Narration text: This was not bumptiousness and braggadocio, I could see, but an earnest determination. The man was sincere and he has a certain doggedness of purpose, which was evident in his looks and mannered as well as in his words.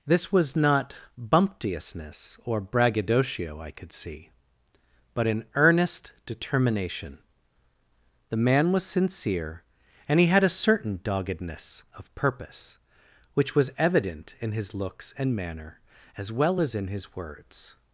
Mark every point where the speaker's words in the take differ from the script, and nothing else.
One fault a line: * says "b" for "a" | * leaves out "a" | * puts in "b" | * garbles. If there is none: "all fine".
* says "or" for "and"
* says "had" for "has"
* says "manner" for "mannered"